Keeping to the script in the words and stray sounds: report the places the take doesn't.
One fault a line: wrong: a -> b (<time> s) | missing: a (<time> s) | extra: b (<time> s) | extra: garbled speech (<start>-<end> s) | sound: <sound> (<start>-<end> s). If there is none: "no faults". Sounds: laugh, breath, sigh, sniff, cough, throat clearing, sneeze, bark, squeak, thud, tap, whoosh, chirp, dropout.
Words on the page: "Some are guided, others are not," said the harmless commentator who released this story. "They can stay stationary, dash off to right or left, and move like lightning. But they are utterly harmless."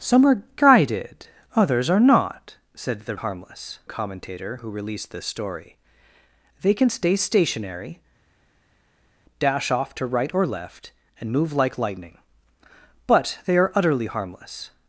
no faults